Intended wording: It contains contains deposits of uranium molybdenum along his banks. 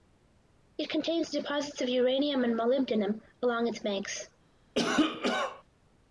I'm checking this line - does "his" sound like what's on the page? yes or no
no